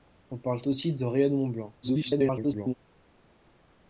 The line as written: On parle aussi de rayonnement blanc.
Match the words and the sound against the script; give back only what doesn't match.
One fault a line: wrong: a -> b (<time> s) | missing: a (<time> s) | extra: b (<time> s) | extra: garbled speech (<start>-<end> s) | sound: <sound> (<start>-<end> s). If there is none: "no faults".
extra: garbled speech (1.8-2.7 s)